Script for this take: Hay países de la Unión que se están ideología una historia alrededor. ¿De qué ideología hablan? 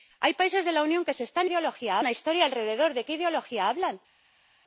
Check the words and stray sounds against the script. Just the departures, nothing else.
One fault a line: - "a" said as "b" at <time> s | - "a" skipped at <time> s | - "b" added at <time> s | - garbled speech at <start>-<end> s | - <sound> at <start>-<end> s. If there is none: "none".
none